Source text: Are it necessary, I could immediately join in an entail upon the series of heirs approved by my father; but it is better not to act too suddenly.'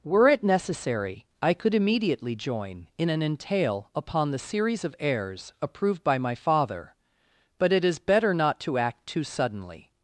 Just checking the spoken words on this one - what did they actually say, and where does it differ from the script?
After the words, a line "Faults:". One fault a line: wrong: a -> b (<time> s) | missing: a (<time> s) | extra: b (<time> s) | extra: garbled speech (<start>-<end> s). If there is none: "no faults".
Were it necessary, I could immediately join in an entail upon the series of heirs approved by my father; but it is better not to act too suddenly.'
Faults:
wrong: Are -> Were (0.0 s)